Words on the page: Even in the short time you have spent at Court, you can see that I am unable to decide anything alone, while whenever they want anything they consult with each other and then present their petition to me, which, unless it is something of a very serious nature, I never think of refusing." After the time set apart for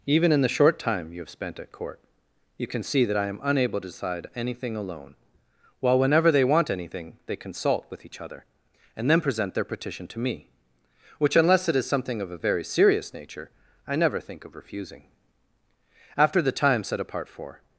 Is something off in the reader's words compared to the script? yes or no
no